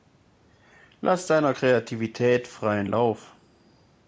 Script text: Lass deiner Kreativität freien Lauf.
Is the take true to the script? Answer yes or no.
yes